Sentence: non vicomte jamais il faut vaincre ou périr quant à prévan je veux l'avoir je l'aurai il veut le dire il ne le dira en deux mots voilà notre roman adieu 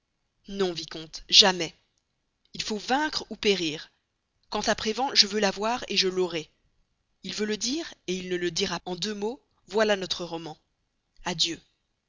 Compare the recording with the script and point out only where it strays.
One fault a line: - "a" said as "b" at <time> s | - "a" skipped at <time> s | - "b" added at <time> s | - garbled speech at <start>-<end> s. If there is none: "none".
none